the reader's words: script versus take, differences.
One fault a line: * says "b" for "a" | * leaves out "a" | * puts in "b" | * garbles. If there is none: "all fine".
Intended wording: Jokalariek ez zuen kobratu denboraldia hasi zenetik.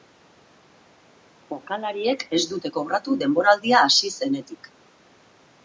* says "dute" for "zuen"